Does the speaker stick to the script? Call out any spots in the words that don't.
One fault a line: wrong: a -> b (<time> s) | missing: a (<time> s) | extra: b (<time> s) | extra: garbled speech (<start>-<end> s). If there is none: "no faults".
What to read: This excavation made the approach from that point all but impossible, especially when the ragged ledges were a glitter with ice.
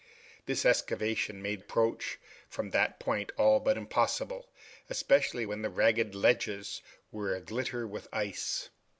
missing: the (1.6 s)